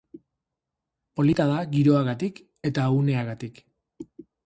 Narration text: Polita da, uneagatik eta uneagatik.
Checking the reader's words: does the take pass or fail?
fail